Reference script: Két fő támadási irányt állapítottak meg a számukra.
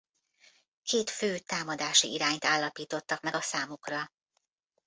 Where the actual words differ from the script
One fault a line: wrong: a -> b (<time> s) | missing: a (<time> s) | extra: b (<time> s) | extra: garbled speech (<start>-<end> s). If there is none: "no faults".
no faults